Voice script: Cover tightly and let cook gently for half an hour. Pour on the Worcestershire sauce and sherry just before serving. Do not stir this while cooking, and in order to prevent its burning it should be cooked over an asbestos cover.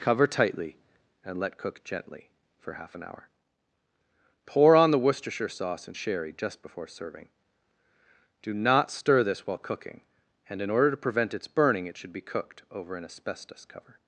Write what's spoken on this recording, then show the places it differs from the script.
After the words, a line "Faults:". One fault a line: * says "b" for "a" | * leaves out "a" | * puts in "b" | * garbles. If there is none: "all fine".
Cover tightly and let cook gently for half an hour. Pour on the Worcestershire sauce and sherry just before serving. Do not stir this while cooking, and in order to prevent its burning it should be cooked over an asbestos cover.
Faults:
all fine